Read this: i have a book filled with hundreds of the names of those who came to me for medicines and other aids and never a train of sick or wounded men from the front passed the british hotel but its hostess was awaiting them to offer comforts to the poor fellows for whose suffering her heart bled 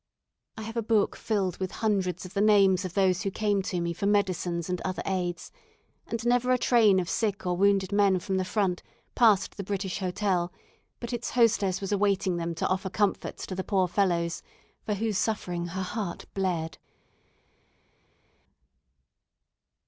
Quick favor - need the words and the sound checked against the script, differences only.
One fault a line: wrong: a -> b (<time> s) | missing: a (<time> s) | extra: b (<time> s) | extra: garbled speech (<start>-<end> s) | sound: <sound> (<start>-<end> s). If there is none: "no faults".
no faults